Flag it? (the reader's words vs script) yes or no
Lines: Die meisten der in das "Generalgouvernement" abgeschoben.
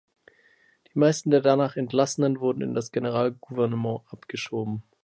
yes